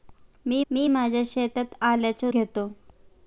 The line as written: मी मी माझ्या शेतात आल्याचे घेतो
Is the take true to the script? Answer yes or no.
yes